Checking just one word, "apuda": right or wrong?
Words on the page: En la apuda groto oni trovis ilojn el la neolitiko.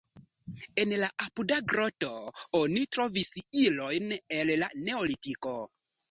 right